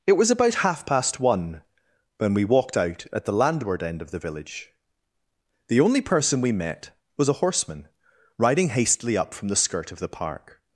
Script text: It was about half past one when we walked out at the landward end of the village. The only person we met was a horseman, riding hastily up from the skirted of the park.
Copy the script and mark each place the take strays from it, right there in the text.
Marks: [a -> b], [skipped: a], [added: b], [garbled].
It was about half past one when we walked out at the landward end of the village. The only person we met was a horseman, riding hastily up from the [skirted -> skirt] of the park.